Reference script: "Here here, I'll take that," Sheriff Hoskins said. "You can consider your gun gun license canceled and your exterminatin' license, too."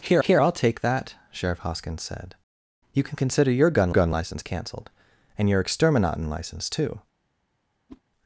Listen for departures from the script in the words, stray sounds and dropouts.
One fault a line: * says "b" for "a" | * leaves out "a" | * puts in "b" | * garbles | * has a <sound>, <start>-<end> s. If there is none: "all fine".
* has a whoosh, 7.9-8.0 s